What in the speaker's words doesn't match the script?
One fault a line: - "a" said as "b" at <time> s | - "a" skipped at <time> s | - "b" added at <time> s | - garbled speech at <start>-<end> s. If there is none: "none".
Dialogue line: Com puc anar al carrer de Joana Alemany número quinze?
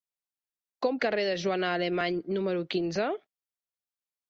- "puc anar al" skipped at 1.0 s